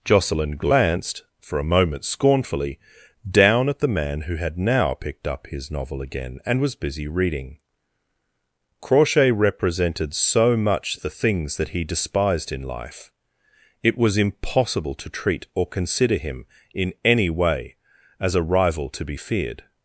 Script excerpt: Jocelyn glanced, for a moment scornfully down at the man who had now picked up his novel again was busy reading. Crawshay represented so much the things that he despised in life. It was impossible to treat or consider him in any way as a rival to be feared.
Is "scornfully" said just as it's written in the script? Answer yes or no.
yes